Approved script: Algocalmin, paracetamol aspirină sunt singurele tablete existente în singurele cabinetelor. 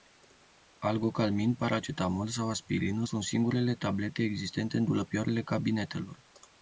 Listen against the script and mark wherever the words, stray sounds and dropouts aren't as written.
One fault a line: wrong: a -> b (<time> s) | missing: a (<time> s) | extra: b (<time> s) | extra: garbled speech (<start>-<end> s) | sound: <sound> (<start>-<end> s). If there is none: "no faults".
extra: sau (2.3 s)
wrong: singurele -> dulăpioarele (4.8 s)